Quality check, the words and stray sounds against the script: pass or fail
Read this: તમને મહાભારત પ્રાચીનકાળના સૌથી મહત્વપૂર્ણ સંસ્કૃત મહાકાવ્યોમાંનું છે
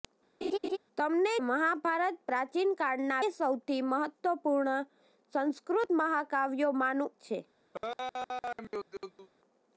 fail